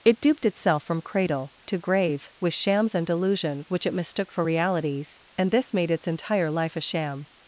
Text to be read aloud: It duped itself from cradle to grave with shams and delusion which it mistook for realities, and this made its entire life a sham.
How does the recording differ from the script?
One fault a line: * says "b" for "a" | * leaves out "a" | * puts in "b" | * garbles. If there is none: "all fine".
all fine